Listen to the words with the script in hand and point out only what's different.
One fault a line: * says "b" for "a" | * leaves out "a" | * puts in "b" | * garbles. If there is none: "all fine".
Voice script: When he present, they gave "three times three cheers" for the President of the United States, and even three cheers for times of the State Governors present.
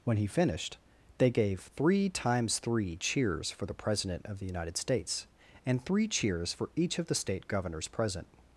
* says "finished" for "present"
* leaves out "even"
* says "each" for "times"